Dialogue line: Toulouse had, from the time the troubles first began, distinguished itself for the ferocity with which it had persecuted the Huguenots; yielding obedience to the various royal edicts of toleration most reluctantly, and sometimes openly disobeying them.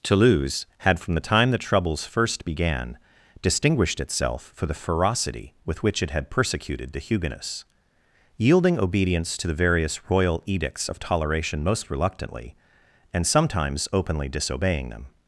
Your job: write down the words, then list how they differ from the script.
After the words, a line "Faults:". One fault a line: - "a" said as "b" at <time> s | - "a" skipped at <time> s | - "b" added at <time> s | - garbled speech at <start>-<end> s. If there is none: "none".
Toulouse had, from the time the troubles first began, distinguished itself for the ferocity with which it had persecuted the Huguenots; yielding obedience to the various royal edicts of toleration most reluctantly, and sometimes openly disobeying them.
Faults:
none